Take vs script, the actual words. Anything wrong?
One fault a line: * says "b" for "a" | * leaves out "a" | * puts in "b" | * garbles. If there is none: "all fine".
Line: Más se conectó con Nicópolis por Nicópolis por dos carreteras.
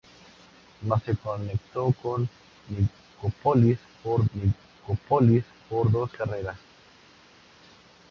all fine